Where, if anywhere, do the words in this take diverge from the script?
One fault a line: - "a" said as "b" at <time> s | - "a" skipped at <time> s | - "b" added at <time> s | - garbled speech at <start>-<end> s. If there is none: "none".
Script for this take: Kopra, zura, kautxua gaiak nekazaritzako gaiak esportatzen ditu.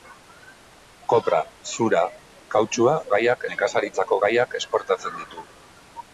none